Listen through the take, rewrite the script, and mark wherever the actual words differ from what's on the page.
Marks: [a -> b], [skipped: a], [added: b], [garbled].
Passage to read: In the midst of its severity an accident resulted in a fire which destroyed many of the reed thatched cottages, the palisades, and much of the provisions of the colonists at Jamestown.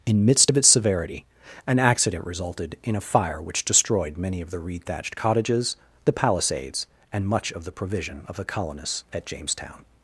In [skipped: the] midst of its severity an accident resulted in a fire which destroyed many of the reed thatched cottages, the palisades, and much of the [provisions -> provision] of the colonists at Jamestown.